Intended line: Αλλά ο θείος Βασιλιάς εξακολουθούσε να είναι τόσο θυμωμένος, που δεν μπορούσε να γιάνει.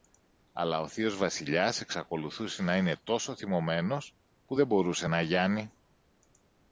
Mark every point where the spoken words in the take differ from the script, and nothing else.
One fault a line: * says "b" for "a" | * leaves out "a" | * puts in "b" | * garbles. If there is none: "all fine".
all fine